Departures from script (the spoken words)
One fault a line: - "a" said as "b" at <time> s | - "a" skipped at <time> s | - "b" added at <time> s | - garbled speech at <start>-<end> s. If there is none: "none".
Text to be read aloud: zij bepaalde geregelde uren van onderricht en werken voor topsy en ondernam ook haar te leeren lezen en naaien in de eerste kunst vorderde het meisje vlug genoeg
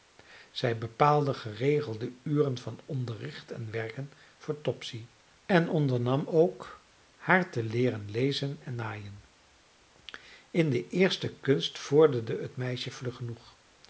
none